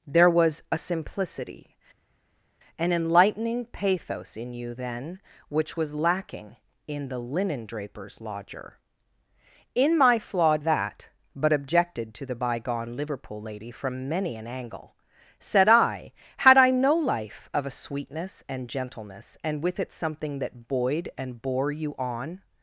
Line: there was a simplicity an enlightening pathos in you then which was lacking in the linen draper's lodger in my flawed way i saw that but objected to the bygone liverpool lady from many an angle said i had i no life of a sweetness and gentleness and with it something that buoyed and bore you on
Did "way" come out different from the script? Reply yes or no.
yes